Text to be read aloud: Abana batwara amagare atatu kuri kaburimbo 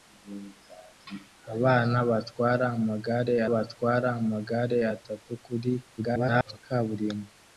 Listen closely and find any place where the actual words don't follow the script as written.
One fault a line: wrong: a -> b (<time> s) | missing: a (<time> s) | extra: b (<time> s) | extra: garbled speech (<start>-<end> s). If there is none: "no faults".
extra: batwara amagare (3.5 s)
extra: garbled speech (6.0-6.6 s)